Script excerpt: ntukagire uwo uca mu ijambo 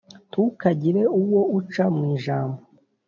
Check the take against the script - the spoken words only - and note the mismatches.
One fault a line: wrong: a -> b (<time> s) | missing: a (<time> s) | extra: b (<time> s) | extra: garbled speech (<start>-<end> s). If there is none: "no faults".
no faults